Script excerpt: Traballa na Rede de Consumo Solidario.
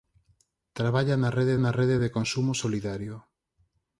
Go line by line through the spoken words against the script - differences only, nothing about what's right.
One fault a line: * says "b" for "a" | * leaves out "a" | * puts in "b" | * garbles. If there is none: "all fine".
* puts in "na Rede"